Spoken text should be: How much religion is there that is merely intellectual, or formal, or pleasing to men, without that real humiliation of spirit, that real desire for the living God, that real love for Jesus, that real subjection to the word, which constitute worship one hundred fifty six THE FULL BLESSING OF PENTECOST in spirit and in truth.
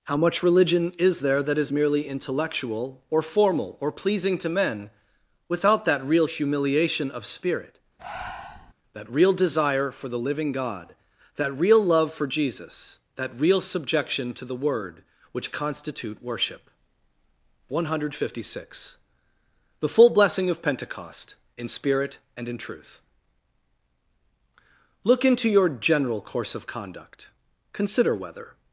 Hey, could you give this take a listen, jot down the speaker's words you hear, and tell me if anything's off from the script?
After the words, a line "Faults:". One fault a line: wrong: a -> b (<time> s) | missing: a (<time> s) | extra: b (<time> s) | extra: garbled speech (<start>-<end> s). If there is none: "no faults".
How much religion is there that is merely intellectual, or formal, or pleasing to men, without that real humiliation of spirit, that real desire for the living God, that real love for Jesus, that real subjection to the word, which constitute worship one hundred fifty six THE FULL BLESSING OF PENTECOST in spirit and in truth. Look into your general course of conduct. Consider whether
Faults:
extra: Look into your general course of conduct Consider whether (25.0 s)